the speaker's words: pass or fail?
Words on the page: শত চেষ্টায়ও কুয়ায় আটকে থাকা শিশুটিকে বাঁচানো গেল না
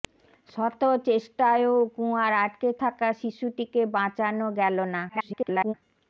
fail